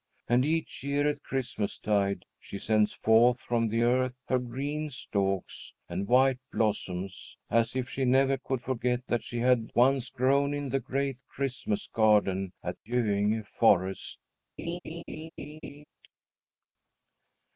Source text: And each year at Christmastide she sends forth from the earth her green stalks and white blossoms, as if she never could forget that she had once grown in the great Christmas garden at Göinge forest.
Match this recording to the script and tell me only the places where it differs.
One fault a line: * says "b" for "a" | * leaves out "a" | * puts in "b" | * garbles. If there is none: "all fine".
all fine